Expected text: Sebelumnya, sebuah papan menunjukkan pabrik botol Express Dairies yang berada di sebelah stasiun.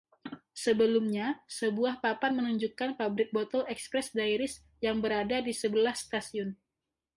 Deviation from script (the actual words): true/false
false